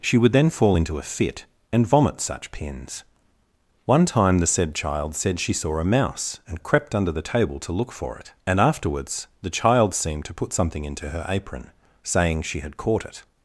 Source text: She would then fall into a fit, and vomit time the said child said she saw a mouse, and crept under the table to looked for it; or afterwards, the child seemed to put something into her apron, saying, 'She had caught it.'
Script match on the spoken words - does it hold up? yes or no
no